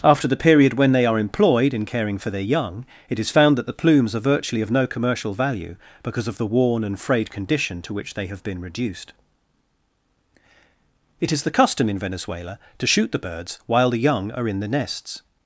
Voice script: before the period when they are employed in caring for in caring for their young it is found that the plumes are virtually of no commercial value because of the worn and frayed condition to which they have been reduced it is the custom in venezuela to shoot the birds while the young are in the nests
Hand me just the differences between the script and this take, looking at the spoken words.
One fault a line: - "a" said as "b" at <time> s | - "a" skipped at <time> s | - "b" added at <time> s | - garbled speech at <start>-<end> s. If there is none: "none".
- "before" said as "after" at 0.0 s
- "in caring for" skipped at 2.3 s